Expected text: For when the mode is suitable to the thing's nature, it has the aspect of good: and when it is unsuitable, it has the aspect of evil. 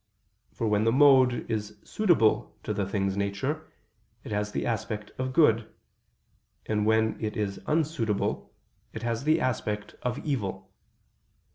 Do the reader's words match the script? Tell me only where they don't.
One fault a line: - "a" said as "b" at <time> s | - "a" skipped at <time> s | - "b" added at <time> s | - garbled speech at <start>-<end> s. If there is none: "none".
none